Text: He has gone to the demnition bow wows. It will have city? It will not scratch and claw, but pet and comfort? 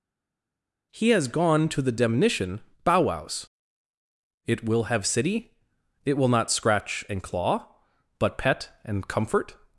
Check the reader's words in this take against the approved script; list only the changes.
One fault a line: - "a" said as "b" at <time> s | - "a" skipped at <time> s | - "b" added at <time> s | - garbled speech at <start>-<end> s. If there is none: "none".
none